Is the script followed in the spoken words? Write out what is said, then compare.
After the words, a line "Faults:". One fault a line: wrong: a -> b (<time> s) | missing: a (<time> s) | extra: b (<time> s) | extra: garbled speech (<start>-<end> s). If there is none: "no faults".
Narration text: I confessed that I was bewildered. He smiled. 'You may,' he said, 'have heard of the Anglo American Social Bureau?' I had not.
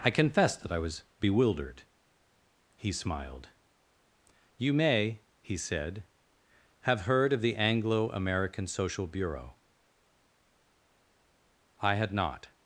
I confessed that I was bewildered. He smiled. 'You may,' he said, 'have heard of the Anglo American Social Bureau?' I had not.
Faults:
no faults